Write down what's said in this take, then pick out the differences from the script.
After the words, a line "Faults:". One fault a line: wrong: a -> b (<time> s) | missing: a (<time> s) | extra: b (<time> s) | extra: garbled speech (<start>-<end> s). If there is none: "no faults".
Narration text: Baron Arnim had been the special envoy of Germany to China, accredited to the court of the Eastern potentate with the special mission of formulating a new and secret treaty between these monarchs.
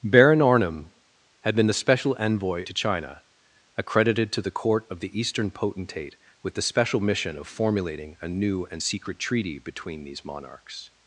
Baron Arnim had been the special envoy to China, accredited to the court of the Eastern potentate with the special mission of formulating a new and secret treaty between these monarchs.
Faults:
missing: of Germany (2.6 s)